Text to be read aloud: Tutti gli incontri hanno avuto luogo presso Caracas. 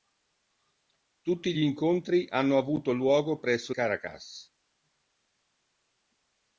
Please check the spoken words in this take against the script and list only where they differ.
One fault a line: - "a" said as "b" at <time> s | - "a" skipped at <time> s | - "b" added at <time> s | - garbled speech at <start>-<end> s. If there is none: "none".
none